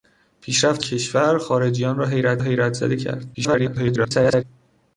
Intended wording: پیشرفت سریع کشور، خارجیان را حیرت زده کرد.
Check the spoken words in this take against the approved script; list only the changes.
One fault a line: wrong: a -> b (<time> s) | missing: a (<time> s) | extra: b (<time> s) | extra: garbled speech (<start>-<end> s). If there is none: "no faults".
missing: سریع (0.8 s)
extra: حیرت (2.4 s)
extra: garbled speech (3.3-4.4 s)